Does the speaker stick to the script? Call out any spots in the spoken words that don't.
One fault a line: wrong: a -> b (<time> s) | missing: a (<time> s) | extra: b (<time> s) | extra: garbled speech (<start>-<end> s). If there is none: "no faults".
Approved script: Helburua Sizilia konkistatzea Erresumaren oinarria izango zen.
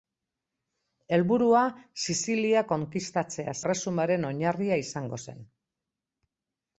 no faults